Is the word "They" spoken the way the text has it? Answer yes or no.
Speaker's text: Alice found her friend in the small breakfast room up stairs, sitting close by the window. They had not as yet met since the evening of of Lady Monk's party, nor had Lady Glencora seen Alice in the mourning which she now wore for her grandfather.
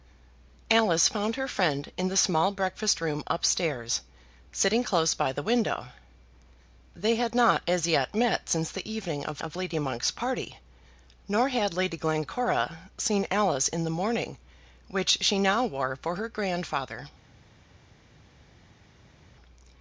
yes